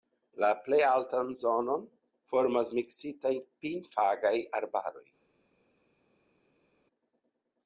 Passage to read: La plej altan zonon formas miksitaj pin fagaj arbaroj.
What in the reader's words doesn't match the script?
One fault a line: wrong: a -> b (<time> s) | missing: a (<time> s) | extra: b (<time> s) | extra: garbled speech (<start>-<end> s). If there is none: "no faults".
no faults